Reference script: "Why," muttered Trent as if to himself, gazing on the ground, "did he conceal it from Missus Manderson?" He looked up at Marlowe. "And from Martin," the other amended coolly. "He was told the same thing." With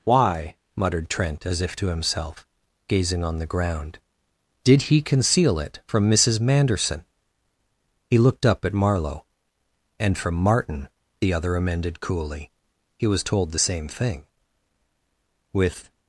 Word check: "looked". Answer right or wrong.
right